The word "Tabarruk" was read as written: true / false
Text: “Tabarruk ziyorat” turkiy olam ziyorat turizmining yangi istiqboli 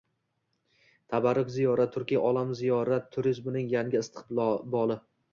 true